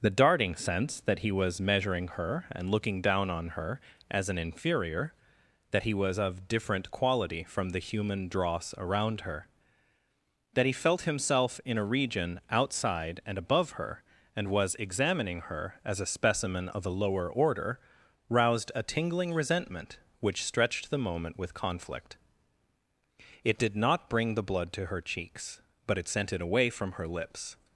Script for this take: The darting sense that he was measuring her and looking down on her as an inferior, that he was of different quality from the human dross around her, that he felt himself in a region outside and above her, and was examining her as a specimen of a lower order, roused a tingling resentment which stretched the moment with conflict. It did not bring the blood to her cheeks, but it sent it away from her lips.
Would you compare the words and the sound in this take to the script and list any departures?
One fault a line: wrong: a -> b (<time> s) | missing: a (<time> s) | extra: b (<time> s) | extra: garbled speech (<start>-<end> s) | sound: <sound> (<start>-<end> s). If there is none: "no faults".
no faults